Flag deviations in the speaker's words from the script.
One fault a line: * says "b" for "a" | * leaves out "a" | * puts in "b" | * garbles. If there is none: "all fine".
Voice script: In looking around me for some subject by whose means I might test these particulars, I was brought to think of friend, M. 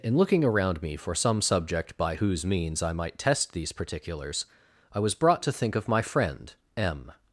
* puts in "my"